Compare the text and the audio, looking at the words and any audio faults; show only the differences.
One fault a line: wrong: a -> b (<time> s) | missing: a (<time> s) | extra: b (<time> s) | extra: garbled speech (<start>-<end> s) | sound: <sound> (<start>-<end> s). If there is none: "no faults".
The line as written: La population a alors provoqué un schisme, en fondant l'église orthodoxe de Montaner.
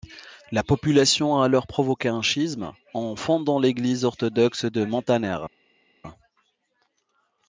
no faults